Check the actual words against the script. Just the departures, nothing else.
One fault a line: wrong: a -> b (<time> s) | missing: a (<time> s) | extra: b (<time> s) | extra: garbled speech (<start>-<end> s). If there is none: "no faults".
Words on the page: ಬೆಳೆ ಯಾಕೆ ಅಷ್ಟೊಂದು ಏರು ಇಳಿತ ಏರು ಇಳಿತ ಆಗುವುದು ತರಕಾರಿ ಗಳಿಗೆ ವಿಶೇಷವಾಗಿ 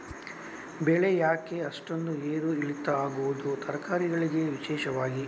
missing: ಏರು ಇಳಿತ (2.9 s)